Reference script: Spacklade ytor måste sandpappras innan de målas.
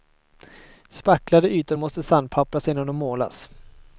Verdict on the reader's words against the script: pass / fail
pass